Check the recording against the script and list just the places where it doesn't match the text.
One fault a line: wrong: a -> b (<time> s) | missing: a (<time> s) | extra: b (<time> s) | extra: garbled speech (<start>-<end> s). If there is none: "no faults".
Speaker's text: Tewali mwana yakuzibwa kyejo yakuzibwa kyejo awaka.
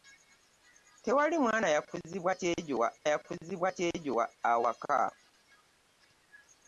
no faults